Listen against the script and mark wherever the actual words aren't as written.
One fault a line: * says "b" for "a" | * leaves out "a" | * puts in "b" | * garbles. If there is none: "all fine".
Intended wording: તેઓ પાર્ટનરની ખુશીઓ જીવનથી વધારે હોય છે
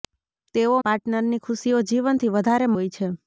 all fine